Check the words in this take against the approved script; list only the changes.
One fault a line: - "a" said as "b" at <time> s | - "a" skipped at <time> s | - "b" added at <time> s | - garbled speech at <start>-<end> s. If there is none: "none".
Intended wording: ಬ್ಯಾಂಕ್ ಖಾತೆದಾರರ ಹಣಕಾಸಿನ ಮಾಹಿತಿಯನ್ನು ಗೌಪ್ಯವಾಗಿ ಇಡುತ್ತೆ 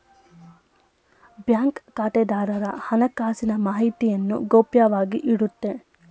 none